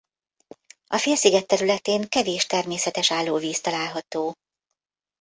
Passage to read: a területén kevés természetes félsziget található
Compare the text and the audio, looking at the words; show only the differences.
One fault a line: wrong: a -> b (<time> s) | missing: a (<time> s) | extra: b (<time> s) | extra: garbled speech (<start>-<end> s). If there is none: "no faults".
extra: félsziget (1.0 s)
wrong: félsziget -> állóvíz (3.1 s)